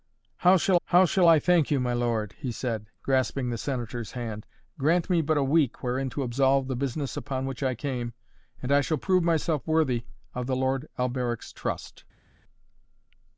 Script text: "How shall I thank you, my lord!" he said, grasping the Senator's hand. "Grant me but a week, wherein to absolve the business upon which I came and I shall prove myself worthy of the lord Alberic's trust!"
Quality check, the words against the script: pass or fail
fail